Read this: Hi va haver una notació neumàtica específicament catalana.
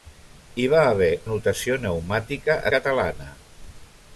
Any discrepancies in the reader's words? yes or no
yes